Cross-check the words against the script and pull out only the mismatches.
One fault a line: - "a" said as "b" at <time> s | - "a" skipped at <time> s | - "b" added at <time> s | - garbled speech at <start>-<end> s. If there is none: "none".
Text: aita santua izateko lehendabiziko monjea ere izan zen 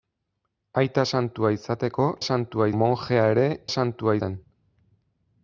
- "lehendabiziko" said as "santua" at 2.3 s
- "izan" said as "santua" at 3.7 s